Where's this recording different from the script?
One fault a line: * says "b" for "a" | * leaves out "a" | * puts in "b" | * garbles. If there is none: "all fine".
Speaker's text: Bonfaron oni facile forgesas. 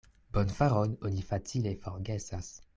all fine